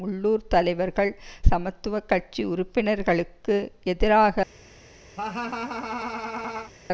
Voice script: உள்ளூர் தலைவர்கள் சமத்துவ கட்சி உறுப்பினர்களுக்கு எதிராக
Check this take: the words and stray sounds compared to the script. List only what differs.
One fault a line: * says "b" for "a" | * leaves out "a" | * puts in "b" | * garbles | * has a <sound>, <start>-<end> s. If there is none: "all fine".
* has a laugh, 5.2-6.7 s